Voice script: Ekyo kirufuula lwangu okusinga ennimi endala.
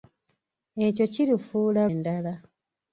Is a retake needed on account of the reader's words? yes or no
yes